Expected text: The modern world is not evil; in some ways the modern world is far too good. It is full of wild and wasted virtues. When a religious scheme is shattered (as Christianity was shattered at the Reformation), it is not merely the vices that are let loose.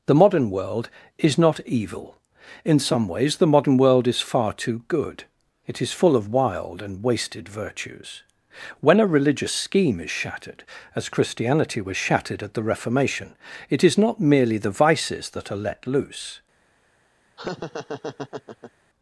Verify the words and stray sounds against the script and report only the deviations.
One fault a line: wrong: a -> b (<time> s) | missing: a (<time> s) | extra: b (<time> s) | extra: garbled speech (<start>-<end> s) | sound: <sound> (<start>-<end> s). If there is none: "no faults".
sound: laugh (17.4-18.7 s)